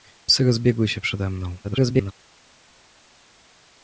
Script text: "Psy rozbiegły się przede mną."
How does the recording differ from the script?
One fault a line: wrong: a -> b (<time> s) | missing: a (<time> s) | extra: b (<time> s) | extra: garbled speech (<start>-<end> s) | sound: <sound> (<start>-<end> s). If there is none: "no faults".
extra: garbled speech (1.6-2.1 s)